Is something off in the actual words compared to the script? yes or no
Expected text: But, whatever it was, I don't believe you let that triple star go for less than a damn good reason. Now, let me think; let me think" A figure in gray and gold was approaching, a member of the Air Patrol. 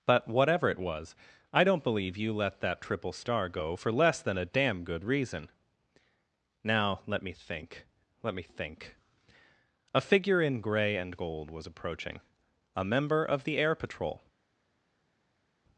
no